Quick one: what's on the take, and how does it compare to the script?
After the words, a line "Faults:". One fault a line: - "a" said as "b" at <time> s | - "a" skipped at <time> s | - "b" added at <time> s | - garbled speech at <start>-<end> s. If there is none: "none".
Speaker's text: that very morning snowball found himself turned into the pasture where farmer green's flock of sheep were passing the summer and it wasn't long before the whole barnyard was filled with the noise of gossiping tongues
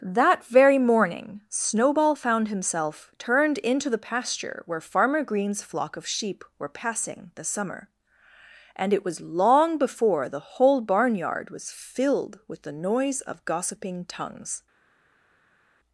that very morning snowball found himself turned into the pasture where farmer green's flock of sheep were passing the summer and it was long before the whole barnyard was filled with the noise of gossiping tongues
Faults:
- "wasn't" said as "was" at 9.0 s